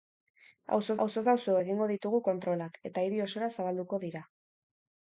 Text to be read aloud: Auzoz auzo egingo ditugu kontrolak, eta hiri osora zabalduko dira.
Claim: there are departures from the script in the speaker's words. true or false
true